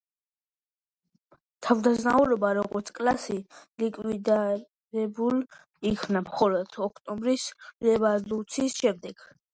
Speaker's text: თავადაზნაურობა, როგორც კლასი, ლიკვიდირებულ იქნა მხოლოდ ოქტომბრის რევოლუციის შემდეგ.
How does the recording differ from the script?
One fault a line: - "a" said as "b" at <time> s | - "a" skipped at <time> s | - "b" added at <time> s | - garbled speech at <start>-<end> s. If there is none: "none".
none